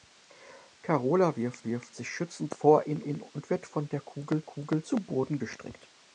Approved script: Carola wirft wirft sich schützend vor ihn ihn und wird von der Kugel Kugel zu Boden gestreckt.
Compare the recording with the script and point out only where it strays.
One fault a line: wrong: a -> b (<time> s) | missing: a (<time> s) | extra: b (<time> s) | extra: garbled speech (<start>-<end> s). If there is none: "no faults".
no faults